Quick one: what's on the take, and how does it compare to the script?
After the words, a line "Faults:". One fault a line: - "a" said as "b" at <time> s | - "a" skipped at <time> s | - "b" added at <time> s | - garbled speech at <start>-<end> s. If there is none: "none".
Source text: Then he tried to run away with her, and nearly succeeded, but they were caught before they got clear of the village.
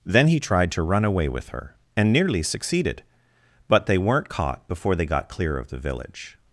Then he tried to run away with her, and nearly succeeded, but they weren't caught before they got clear of the village.
Faults:
- "were" said as "weren't" at 4.0 s